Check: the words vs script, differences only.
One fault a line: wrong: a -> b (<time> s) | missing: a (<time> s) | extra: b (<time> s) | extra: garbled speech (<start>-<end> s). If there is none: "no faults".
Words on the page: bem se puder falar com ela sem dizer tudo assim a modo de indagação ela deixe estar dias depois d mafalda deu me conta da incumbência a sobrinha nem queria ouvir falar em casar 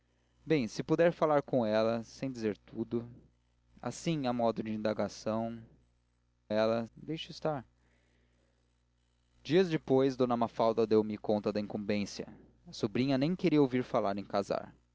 no faults